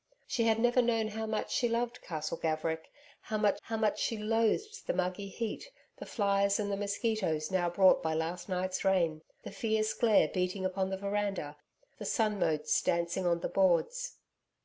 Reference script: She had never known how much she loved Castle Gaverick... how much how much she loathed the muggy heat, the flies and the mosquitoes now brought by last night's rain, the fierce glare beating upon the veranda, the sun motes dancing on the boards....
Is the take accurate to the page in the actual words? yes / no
yes